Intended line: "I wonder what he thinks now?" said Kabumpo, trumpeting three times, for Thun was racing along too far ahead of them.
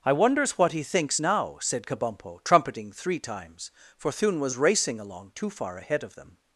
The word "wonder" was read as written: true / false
false